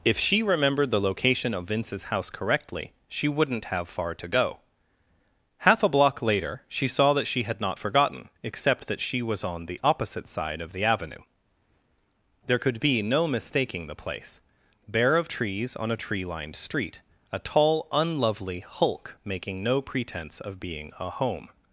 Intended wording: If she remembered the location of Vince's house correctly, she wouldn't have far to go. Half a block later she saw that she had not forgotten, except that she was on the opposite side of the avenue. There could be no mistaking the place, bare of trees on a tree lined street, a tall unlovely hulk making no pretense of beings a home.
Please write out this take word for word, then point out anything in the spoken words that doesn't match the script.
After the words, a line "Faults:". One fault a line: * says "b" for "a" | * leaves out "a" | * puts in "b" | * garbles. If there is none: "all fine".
If she remembered the location of Vince's house correctly, she wouldn't have far to go. Half a block later she saw that she had not forgotten, except that she was on the opposite side of the avenue. There could be no mistaking the place, bare of trees on a tree lined street, a tall unlovely hulk making no pretense of being a home.
Faults:
* says "being" for "beings"